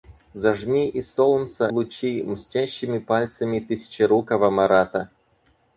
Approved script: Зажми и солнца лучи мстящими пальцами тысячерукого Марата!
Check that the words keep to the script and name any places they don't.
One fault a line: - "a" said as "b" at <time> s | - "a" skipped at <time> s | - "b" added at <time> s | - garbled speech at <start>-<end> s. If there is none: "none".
none